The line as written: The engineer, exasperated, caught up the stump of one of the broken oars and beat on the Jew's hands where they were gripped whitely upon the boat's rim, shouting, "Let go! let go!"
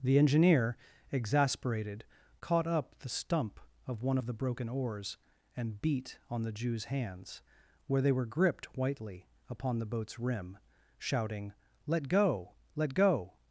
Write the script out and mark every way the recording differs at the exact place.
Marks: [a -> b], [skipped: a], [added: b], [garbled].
The engineer, exasperated, caught up the stump of one of the broken oars and beat on the Jew's hands where they were gripped whitely upon the boat's rim, shouting, "Let go! let go!"